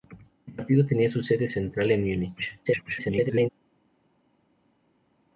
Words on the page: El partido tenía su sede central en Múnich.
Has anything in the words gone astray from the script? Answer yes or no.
yes